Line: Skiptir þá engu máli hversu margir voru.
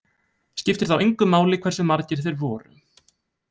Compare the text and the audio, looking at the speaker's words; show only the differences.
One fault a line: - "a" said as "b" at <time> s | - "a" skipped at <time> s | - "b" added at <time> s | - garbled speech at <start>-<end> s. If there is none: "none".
- "þeir" added at 2.3 s